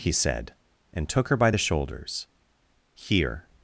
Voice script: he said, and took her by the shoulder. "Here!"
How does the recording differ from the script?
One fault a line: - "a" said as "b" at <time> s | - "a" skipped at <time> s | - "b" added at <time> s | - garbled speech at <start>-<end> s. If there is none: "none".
- "shoulder" said as "shoulders" at 1.6 s